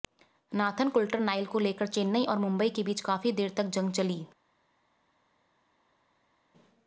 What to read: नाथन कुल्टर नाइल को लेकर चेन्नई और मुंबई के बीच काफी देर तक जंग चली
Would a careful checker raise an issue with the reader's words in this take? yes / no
no